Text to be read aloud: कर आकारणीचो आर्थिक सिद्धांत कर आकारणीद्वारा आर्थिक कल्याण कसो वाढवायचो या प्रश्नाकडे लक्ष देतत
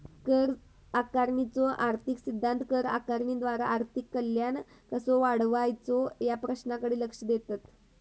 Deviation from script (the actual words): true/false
false